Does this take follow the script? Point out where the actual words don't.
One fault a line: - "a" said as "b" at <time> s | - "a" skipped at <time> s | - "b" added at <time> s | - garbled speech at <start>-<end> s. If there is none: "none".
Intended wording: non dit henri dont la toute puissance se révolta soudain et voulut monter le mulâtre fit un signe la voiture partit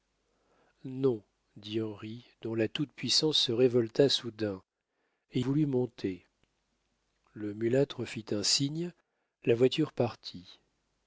none